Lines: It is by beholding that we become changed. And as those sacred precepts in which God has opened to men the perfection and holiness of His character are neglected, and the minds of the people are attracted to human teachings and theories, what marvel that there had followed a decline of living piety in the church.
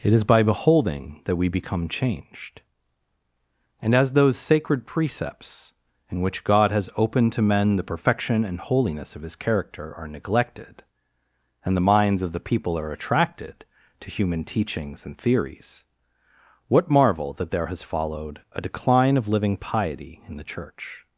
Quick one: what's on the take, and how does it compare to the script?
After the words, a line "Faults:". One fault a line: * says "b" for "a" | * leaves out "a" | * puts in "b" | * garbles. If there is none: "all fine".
It is by beholding that we become changed. And as those sacred precepts in which God has opened to men the perfection and holiness of His character are neglected, and the minds of the people are attracted to human teachings and theories, what marvel that there has followed a decline of living piety in the church.
Faults:
* says "has" for "had"